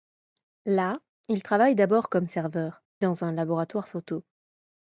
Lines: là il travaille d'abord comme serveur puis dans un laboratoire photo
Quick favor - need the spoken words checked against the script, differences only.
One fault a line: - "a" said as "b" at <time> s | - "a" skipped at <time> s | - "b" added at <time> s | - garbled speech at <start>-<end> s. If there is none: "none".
- "puis" skipped at 2.8 s